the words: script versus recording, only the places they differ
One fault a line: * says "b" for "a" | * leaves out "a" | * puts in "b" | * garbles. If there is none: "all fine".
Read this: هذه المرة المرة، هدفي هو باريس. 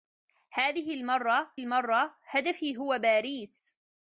all fine